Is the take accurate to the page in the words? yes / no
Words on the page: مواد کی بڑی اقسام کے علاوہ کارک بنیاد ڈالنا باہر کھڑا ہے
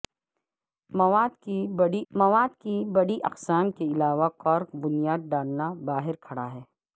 no